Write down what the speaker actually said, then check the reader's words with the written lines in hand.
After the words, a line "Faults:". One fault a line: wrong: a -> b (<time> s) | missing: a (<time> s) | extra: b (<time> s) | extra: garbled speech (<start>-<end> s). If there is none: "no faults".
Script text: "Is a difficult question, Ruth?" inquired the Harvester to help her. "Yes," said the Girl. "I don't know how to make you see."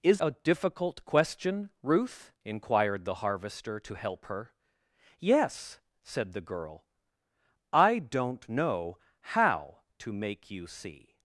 "Is a difficult question, Ruth?" inquired the Harvester to help her. "Yes," said the Girl. "I don't know how to make you see."
Faults:
no faults